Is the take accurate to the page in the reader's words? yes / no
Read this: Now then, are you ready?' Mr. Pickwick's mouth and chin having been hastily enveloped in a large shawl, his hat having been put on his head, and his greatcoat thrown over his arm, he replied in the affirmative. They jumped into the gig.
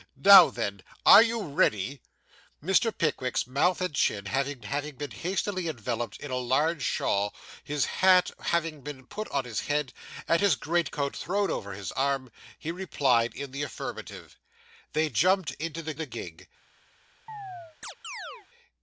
no